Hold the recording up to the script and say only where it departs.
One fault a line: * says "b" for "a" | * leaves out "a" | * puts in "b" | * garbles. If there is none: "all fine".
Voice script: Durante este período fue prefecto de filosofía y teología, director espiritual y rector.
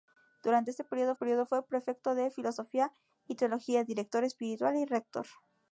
* puts in "período"